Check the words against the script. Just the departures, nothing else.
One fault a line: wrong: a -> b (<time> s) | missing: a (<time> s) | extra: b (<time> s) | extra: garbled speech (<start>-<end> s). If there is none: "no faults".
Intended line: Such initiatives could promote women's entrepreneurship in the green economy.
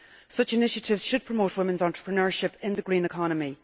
wrong: could -> should (1.0 s)